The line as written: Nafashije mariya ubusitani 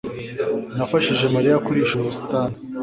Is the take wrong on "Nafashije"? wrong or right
right